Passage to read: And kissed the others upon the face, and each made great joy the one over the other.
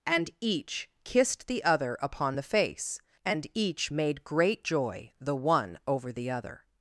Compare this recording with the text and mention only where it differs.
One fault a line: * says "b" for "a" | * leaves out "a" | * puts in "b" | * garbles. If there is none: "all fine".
* puts in "each"
* says "other" for "others"